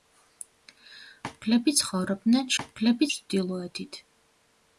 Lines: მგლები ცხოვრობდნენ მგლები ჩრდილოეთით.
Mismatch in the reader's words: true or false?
false